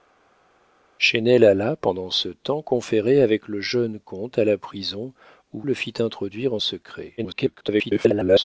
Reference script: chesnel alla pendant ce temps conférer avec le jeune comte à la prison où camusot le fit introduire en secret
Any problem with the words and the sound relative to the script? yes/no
yes